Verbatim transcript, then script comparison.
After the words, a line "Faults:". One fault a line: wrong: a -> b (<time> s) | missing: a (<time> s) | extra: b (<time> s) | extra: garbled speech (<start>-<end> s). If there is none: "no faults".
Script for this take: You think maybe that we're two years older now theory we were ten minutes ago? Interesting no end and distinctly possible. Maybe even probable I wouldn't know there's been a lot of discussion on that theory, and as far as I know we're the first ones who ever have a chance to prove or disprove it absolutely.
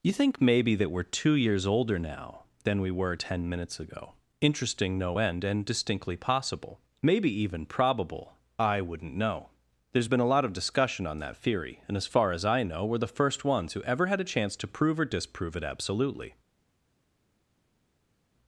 You think maybe that we're two years older now than we were ten minutes ago? Interesting no end and distinctly possible. Maybe even probable I wouldn't know there's been a lot of discussion on that theory, and as far as I know we're the first ones who ever had a chance to prove or disprove it absolutely.
Faults:
wrong: theory -> than (2.6 s)
wrong: have -> had (14.1 s)